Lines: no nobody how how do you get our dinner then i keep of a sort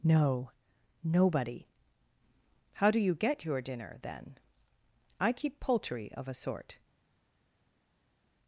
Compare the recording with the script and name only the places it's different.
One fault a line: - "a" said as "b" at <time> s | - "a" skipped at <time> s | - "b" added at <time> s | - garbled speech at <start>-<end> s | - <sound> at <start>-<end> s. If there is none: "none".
- "how" skipped at 2.9 s
- "our" said as "your" at 3.5 s
- "poultry" added at 5.6 s